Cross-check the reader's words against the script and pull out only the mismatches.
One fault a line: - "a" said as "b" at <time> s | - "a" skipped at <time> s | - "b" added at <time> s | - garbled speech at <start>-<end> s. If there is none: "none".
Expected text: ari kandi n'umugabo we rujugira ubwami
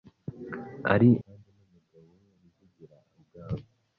none